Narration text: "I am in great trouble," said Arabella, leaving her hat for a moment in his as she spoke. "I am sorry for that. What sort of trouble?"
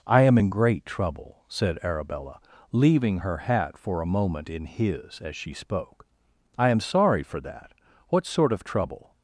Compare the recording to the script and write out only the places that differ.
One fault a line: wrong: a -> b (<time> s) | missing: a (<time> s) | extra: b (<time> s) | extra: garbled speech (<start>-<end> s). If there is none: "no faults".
no faults